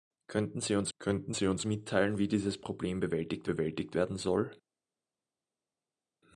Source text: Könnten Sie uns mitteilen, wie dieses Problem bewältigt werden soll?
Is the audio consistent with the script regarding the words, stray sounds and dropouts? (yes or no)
no